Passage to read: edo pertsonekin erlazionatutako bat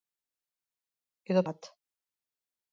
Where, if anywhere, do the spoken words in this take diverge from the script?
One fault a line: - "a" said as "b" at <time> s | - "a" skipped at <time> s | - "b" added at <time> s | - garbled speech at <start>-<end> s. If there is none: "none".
- "pertsonekin erlazionatutako" skipped at 1.4 s